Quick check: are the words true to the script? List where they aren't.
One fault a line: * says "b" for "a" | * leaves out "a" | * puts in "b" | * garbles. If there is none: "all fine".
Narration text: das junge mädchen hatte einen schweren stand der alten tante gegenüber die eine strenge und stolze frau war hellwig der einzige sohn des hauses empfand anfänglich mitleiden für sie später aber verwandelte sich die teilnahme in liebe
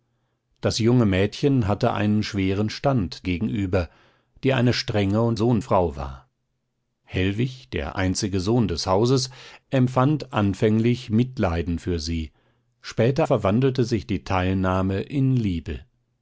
* leaves out "der alten tante"
* says "sohn" for "stolze"
* leaves out "aber"